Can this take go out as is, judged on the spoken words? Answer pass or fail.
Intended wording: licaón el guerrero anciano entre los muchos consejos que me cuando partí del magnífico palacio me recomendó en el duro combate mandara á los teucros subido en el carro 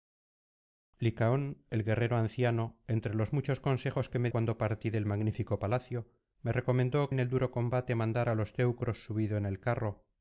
pass